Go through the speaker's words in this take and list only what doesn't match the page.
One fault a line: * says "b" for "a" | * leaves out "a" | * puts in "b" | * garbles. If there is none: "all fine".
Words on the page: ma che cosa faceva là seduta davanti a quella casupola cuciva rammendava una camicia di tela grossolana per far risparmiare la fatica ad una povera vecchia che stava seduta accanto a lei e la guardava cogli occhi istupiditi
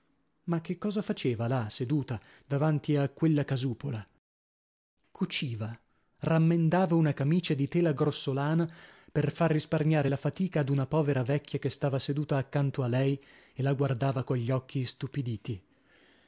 all fine